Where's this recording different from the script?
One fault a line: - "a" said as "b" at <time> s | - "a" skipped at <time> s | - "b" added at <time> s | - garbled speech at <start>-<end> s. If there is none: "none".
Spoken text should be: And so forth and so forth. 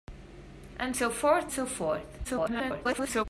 - "and" skipped at 1.5 s
- garbled speech at 2.2-3.3 s